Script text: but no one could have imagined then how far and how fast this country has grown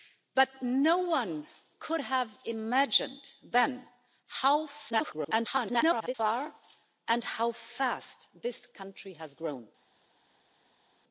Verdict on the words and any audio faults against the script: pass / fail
fail